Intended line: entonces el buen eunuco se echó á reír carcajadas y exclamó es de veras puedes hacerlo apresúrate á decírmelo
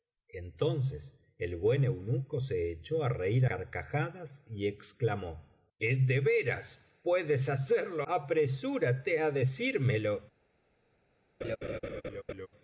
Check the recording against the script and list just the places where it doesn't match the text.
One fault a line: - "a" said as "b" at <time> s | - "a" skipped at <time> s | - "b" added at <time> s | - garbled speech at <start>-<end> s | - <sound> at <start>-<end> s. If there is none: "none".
- laugh at 11.4-12.5 s